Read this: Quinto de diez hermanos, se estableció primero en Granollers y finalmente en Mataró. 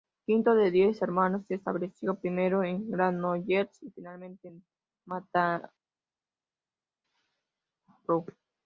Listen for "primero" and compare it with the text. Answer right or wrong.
right